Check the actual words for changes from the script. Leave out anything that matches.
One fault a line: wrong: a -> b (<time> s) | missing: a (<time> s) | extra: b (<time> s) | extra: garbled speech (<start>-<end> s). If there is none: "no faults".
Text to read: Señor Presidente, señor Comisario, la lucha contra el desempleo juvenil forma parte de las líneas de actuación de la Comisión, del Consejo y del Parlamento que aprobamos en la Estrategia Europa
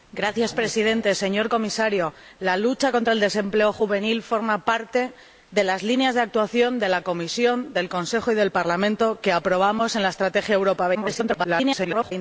extra: garbled speech (10.9-12.1 s)